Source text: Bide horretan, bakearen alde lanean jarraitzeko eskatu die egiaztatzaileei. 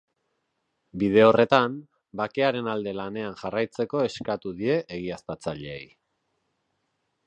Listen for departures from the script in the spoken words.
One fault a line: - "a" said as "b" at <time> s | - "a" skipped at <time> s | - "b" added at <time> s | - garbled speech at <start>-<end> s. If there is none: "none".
none